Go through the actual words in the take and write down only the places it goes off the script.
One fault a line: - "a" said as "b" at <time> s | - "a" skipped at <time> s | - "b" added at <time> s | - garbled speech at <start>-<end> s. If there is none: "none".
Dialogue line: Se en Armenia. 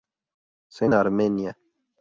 none